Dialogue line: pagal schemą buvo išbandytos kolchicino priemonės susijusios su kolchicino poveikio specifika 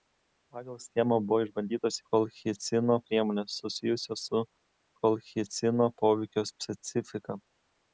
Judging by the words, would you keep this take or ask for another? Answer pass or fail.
pass